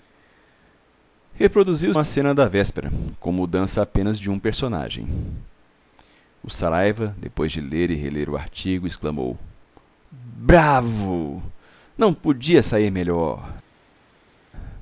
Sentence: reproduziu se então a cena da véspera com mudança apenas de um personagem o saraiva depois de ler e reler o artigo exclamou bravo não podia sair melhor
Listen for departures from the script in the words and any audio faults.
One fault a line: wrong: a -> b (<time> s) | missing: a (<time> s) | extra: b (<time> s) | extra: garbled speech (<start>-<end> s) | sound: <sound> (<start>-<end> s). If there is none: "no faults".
missing: se então (1.9 s)